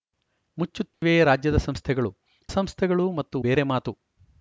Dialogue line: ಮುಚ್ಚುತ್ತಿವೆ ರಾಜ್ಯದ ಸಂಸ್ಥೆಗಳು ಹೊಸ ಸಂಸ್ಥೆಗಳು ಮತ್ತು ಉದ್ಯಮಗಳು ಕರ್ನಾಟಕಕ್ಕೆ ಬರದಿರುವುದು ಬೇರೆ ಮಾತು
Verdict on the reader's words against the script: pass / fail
fail